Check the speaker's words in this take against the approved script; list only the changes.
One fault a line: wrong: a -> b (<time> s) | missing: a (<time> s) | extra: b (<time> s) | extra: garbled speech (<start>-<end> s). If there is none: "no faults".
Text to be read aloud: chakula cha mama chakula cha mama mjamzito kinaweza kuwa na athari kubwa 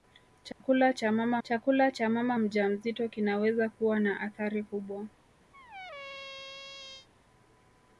no faults